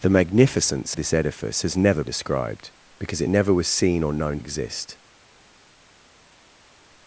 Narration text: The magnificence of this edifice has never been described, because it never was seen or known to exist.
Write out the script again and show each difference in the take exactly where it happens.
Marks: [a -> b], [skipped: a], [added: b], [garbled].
The magnificence [skipped: of] this edifice has never [skipped: been] described, because it never was seen or known [skipped: to] exist.